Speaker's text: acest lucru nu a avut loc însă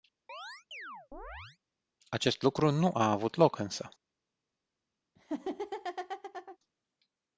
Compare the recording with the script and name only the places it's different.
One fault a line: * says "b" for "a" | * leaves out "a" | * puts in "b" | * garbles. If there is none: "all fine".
all fine